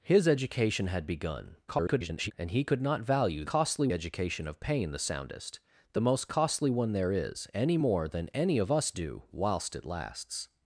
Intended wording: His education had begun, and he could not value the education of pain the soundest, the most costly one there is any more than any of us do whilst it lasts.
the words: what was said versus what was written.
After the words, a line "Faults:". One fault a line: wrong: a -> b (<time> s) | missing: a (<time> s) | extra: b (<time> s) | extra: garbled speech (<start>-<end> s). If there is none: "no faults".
His education had begun, [garbled] and he could not value costly education of pain the soundest, the most costly one there is any more than any of us do whilst it lasts.
Faults:
extra: garbled speech (1.7-2.3 s)
wrong: the -> costly (3.5 s)